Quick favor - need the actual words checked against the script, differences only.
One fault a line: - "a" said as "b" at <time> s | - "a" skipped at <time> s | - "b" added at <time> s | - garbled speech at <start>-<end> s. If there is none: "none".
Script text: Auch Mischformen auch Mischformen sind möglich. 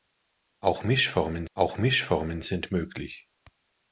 none